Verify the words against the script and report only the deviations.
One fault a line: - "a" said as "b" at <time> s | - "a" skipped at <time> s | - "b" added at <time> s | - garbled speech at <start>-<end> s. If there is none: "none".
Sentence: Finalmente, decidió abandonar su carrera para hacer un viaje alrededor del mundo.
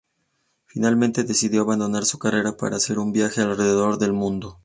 none